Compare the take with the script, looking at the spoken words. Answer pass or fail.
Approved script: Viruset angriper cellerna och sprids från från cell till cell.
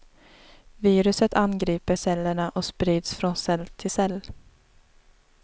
fail